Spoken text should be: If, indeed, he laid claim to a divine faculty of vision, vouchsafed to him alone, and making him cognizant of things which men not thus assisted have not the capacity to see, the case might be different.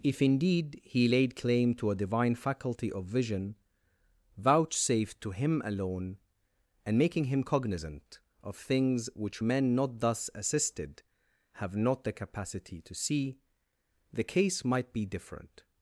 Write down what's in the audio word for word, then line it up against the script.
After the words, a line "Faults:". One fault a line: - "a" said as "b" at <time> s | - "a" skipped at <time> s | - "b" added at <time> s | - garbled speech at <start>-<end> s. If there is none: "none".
If, indeed, he laid claim to a divine faculty of vision, vouchsafed to him alone, and making him cognizant of things which men not thus assisted have not the capacity to see, the case might be different.
Faults:
none